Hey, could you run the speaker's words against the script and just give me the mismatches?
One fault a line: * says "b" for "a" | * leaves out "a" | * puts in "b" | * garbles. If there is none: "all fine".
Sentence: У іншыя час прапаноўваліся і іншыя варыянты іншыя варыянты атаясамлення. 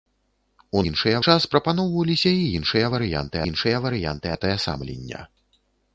all fine